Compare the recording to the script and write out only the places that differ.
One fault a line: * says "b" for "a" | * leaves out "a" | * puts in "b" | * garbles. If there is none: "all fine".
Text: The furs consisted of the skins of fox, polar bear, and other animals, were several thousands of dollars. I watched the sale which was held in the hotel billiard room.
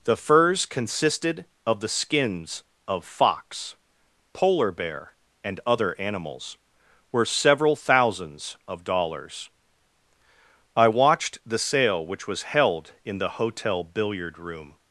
all fine